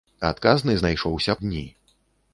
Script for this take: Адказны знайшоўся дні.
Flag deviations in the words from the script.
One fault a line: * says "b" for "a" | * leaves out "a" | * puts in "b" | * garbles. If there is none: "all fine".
all fine